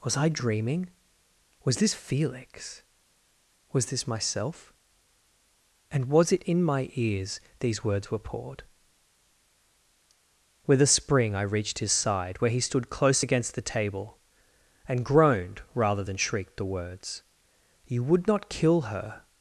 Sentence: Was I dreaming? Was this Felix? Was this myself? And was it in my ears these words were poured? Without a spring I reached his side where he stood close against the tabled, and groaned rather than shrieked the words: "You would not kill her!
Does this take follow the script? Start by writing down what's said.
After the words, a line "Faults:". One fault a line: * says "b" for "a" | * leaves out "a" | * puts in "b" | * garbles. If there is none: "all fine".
Was I dreaming? Was this Felix? Was this myself? And was it in my ears these words were poured? With a spring I reached his side where he stood close against the table, and groaned rather than shrieked the words: "You would not kill her!
Faults:
* says "With" for "Without"
* says "table" for "tabled"